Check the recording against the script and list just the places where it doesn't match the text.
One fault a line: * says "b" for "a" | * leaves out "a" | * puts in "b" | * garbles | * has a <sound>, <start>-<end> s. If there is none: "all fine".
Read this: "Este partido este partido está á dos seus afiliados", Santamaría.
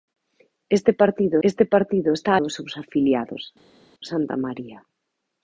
all fine